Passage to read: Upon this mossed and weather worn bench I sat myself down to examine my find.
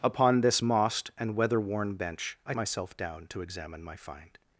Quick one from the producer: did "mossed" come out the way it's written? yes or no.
yes